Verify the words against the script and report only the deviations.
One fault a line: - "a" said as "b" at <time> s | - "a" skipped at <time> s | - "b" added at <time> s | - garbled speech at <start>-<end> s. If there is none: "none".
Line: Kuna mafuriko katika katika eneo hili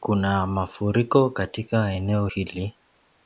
- "katika" skipped at 1.9 s